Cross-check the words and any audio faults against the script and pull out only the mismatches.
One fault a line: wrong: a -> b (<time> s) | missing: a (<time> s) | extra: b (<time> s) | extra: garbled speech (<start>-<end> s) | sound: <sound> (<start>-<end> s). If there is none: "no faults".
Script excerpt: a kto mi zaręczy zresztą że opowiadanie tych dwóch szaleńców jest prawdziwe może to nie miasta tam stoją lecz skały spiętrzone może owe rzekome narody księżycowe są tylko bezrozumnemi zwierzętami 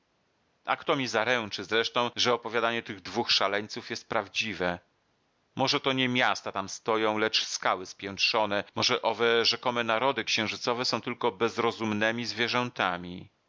no faults